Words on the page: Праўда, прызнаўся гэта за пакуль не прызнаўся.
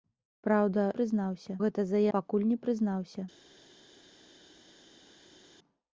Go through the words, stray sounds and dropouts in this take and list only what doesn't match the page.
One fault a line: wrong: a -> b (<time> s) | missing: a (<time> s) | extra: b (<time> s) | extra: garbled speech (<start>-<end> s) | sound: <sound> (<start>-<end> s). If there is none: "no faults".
no faults